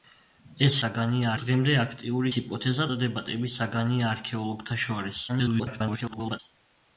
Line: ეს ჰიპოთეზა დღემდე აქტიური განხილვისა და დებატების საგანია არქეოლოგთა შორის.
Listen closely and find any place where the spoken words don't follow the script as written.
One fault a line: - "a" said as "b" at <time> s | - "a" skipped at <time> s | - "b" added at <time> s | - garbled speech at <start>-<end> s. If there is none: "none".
- "ჰიპოთეზა" said as "საგანია" at 0.8 s
- "განხილვისა" said as "ჰიპოთეზა" at 2.3 s
- garbled speech at 5.3-6.4 s